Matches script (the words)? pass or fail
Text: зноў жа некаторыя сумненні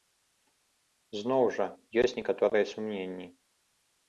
fail